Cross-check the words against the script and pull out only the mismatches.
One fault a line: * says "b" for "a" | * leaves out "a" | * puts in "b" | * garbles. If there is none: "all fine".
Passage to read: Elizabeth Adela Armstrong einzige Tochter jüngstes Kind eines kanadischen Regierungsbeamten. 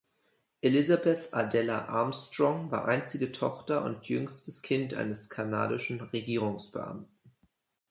* puts in "war"
* puts in "und"